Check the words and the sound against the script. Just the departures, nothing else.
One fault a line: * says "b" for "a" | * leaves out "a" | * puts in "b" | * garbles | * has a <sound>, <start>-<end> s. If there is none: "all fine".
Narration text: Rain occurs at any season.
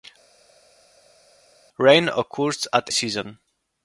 * leaves out "any"